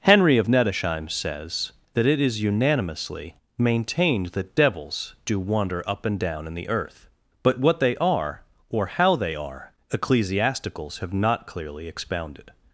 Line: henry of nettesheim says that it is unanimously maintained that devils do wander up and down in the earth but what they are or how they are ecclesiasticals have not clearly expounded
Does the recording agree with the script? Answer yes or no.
yes